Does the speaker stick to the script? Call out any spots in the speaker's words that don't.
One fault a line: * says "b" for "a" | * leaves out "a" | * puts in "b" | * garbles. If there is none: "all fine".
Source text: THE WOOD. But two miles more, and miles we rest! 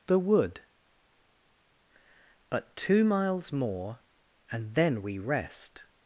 * says "then" for "miles"